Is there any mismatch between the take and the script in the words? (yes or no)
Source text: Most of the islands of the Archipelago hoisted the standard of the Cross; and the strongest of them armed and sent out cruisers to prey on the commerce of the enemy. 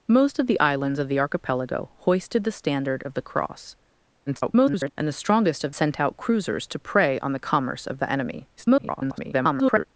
yes